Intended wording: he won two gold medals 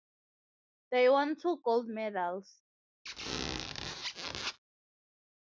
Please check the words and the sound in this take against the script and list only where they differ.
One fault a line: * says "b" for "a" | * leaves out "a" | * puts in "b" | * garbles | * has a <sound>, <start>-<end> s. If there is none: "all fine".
* says "they" for "he"
* has a squeak, 3.1-4.6 s